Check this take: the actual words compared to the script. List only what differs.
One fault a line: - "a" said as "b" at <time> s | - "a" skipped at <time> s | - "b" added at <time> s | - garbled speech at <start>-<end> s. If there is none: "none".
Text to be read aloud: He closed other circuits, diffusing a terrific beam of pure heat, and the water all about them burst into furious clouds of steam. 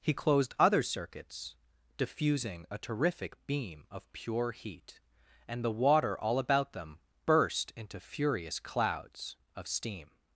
none